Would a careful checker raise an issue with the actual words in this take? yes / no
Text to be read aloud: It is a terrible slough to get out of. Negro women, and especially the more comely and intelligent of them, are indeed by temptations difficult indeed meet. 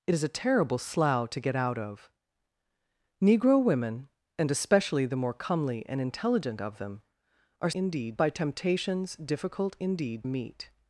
no